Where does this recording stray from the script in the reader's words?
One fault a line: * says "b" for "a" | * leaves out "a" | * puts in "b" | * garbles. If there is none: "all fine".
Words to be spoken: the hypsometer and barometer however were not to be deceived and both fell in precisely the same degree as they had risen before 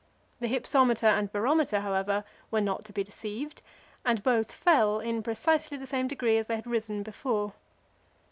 all fine